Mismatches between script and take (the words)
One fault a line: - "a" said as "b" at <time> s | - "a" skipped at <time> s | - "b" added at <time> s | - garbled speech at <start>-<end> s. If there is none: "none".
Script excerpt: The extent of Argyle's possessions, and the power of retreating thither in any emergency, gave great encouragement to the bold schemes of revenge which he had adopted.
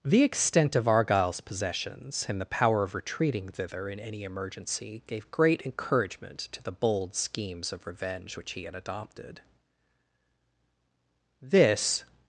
- "This" added at 11.4 s